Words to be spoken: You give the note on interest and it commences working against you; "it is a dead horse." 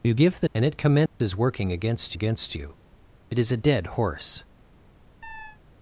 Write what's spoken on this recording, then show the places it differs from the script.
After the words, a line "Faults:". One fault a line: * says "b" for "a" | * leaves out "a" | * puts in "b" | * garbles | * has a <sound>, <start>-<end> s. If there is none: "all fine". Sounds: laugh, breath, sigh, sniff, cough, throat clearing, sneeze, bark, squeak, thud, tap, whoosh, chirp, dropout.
You give the and it commences working against against you; "it is a dead horse."
Faults:
* leaves out "note on interest"
* has a dropout, 1.1-1.2 s
* puts in "against"
* has a chirp, 5.2-5.6 s